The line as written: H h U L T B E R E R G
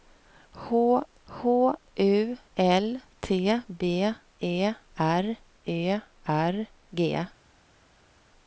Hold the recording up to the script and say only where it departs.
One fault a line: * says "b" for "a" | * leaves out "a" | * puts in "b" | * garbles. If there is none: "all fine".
all fine